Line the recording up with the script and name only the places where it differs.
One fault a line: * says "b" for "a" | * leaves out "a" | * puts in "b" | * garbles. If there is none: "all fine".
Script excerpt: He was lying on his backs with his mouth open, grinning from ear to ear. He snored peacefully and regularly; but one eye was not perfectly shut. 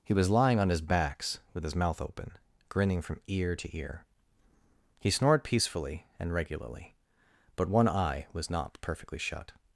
all fine